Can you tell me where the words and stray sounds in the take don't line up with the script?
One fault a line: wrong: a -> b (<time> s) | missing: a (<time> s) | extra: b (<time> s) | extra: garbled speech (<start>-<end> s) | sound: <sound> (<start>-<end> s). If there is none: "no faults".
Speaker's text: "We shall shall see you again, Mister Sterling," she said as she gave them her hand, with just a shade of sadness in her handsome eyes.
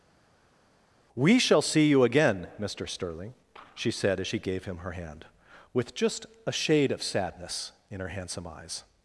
missing: shall (1.6 s)
wrong: them -> him (4.7 s)